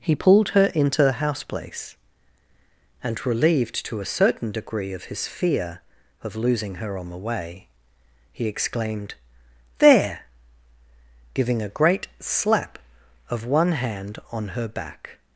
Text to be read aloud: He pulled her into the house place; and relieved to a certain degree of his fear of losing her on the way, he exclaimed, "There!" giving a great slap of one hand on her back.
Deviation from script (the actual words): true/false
false